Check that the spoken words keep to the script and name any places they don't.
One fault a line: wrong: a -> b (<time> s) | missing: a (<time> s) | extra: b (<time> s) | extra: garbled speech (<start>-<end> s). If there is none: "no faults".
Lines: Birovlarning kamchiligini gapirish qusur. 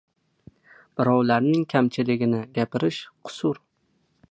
no faults